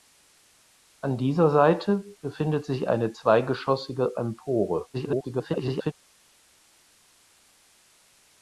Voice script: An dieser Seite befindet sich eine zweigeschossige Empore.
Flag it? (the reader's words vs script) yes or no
yes